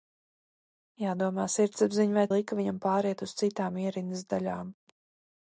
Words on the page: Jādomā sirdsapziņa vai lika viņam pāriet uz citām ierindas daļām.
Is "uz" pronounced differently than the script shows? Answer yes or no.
no